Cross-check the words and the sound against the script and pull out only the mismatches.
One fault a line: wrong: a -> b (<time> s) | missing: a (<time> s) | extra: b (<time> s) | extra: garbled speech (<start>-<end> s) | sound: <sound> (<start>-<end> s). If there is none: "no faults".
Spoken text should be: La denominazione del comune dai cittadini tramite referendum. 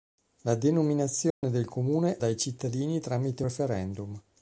sound: dropout (1.3-1.4 s)